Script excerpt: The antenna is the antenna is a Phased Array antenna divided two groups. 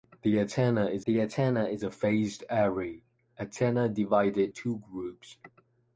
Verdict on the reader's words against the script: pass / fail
pass